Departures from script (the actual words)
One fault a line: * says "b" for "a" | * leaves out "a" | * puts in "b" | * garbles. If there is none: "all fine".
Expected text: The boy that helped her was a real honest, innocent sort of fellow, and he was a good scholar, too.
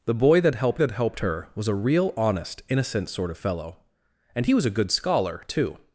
* puts in "that helped"